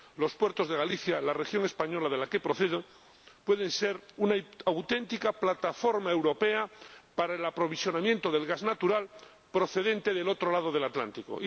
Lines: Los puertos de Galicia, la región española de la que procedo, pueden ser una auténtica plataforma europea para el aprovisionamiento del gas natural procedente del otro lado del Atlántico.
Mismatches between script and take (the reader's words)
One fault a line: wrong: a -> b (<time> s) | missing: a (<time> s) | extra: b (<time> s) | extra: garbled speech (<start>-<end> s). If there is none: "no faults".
no faults